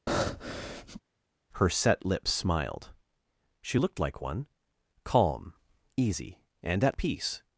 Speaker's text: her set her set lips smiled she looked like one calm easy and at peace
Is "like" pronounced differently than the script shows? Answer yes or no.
no